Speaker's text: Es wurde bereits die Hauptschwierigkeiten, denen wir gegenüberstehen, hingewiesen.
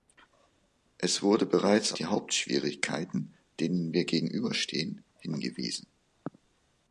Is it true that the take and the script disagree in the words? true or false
false